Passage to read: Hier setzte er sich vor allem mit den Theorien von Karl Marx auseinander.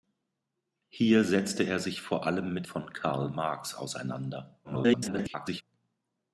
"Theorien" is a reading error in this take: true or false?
true